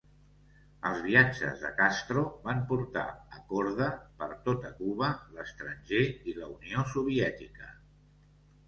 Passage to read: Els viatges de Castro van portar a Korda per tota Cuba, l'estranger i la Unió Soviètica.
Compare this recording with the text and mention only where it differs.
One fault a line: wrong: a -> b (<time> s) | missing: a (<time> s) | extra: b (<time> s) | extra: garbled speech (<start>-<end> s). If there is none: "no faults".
no faults